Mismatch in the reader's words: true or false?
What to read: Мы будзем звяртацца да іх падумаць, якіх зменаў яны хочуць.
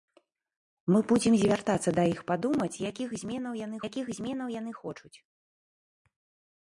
true